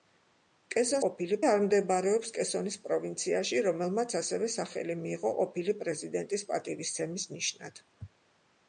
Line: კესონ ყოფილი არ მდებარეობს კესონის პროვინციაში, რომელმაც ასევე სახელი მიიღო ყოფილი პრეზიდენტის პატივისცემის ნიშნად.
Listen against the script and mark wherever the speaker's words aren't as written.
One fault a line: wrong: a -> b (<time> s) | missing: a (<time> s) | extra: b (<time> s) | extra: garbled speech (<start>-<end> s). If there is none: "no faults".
no faults